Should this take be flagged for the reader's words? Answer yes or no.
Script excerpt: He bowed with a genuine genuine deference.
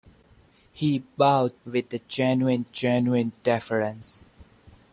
no